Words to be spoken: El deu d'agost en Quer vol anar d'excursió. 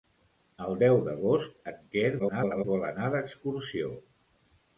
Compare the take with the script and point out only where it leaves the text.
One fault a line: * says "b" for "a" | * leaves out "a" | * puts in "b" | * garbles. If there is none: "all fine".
* garbles